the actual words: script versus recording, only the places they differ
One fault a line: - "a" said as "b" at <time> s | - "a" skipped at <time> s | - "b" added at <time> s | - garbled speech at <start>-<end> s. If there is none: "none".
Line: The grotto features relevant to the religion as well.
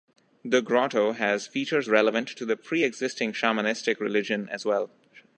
- "has" added at 1.1 s
- "pre existing shamanistic" added at 2.6 s